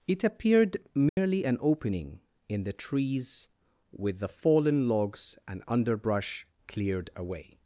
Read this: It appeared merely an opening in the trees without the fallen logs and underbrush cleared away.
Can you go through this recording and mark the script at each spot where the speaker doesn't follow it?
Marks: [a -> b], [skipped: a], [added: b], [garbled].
It appeared merely an opening in the trees [without -> with] the fallen logs and underbrush cleared away.